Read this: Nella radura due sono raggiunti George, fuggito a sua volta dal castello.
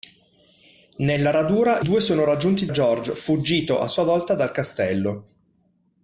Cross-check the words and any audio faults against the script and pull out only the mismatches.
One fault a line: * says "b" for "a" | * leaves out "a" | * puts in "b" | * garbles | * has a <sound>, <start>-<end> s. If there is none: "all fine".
all fine